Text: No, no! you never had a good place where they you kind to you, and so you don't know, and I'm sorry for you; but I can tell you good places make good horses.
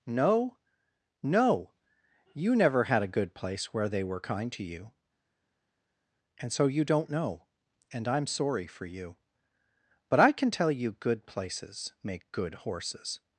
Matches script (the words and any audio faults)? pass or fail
fail